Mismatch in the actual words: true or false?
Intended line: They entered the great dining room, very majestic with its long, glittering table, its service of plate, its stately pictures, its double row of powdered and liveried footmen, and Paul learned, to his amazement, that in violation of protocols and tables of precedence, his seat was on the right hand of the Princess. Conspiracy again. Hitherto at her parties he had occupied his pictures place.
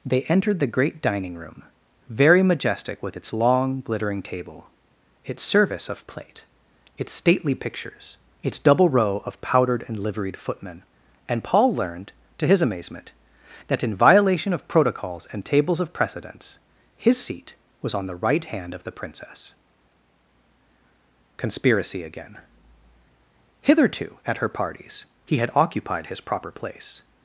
true